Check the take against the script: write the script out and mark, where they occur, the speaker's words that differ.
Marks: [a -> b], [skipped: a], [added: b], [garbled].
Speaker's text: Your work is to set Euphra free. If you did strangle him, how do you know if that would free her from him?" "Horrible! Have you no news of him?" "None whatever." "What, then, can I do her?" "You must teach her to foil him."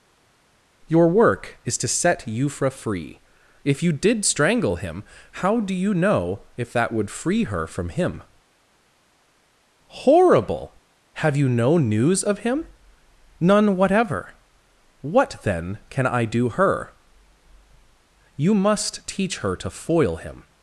Your work is to set Euphra free. If you did strangle him, how do you know if that would free her from him?" "Horrible! Have you no news of him?" "None whatever." "What, then, can I do her?" "You must teach her to foil him."